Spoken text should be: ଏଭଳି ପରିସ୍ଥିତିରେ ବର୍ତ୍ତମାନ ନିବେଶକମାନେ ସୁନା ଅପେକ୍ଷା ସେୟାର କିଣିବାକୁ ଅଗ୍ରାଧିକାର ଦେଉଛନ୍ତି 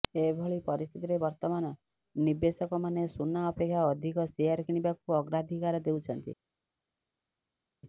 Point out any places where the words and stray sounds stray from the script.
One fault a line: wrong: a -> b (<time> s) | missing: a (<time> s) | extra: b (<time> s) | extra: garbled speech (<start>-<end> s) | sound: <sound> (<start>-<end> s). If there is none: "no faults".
extra: ଅଧିକ (3.9 s)